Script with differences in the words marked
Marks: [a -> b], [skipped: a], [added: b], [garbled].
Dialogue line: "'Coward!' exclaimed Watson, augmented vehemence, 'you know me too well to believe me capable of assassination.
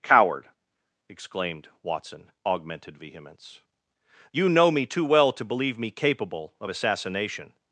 "'Coward!' exclaimed Watson, augmented vehemence, 'you know me too well to believe me capable of assassination.